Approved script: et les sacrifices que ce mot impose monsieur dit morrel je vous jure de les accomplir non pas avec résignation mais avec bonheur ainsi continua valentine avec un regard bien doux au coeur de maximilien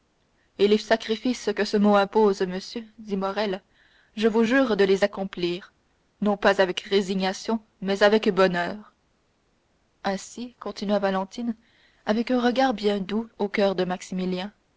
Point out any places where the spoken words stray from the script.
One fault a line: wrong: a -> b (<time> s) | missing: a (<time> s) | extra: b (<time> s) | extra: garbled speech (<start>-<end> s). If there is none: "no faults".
no faults